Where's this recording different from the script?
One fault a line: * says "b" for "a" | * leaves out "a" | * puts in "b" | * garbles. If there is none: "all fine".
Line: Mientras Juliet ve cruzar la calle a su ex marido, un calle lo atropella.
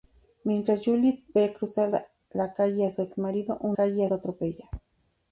all fine